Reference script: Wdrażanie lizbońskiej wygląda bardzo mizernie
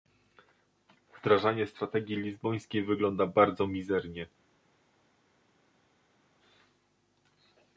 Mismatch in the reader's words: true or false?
true